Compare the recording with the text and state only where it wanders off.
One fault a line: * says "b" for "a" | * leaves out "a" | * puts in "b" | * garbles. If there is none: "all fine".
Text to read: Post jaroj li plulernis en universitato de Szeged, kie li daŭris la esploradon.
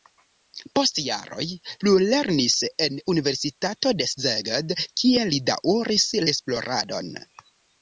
* leaves out "li"
* leaves out "la"